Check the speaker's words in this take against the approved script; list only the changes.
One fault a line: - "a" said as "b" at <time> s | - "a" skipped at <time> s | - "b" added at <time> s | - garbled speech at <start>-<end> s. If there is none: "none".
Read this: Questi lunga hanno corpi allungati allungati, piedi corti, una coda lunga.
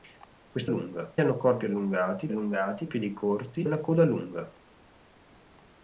none